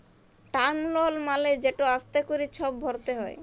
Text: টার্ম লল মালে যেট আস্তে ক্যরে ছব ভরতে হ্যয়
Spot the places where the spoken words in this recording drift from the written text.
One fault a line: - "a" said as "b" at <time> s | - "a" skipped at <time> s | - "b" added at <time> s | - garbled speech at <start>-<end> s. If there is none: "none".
none